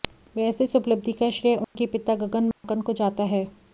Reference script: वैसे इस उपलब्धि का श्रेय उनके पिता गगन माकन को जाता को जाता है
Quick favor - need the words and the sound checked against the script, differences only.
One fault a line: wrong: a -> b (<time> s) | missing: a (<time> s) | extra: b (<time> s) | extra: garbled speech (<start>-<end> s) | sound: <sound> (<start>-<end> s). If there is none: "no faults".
sound: dropout (1.6-1.8 s)
sound: dropout (2.5-2.6 s)
missing: को जाता (3.2 s)